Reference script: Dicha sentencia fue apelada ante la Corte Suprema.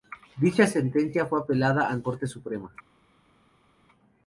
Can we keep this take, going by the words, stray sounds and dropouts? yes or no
no